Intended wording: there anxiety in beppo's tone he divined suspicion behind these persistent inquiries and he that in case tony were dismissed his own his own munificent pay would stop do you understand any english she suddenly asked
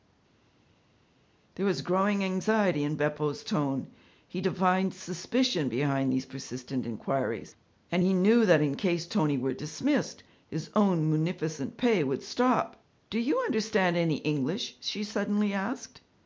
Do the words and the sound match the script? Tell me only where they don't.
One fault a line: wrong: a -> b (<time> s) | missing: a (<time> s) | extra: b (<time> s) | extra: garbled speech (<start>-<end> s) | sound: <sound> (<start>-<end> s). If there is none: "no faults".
extra: was growing (1.7 s)
extra: knew (8.1 s)
missing: his own (11.1 s)